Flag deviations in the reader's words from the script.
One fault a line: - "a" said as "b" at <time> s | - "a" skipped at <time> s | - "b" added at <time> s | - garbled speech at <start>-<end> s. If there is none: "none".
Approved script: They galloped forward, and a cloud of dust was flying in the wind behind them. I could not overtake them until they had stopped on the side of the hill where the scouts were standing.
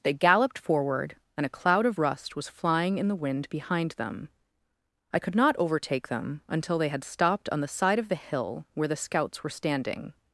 - "dust" said as "rust" at 2.0 s